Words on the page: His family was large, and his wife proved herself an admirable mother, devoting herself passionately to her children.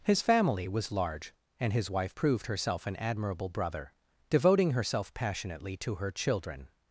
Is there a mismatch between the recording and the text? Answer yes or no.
yes